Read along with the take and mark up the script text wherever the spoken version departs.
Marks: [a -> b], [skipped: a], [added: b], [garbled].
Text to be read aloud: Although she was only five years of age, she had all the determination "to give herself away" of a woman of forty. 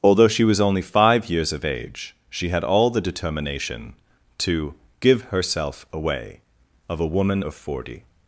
Although she was only five years of age, she had all the determination "to give herself away" of a woman of forty.